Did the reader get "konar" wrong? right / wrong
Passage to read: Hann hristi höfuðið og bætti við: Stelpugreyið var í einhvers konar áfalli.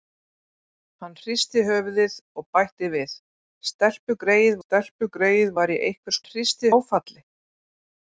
wrong